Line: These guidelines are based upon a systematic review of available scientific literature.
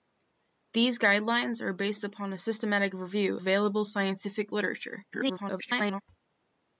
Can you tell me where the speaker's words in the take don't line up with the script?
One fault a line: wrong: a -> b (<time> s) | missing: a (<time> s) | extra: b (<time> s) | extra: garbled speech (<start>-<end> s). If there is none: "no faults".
missing: of (3.4 s)
extra: garbled speech (5.1-6.0 s)